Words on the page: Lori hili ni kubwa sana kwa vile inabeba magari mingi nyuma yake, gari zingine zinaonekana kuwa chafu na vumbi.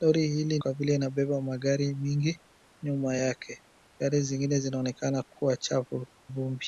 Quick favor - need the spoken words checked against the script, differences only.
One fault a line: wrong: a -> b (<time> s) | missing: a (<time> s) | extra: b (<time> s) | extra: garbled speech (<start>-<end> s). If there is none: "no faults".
missing: ni kubwa sana (0.6 s)
missing: na (6.1 s)